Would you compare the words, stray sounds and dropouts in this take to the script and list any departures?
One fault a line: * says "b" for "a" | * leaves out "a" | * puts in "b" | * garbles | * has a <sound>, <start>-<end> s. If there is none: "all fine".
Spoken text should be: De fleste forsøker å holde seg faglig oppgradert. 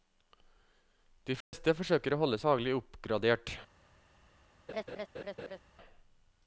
* has a dropout, 1.4-1.5 s
* leaves out "seg"
* has a laugh, 4.7-5.6 s